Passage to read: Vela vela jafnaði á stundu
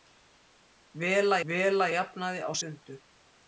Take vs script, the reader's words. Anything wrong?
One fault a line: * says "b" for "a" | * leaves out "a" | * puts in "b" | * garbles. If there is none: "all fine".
all fine